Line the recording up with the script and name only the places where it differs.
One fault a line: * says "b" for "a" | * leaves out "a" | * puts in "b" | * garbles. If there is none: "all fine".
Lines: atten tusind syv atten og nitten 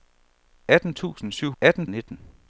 all fine